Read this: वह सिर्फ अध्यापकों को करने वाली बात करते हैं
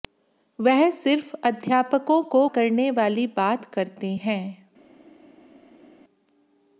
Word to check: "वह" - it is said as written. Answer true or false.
true